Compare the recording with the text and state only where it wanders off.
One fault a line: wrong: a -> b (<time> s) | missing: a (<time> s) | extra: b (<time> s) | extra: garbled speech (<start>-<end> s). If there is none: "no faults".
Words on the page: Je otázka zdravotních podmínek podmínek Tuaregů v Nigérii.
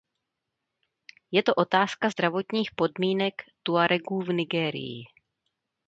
extra: to (1.4 s)
missing: podmínek (3.3 s)